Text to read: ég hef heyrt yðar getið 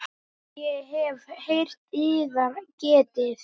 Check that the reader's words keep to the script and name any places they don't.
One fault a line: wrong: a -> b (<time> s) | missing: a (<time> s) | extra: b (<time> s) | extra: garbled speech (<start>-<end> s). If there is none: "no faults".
no faults